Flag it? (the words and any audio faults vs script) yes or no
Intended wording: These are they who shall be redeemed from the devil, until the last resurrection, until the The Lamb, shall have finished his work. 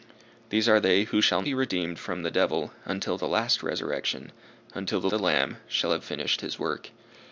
no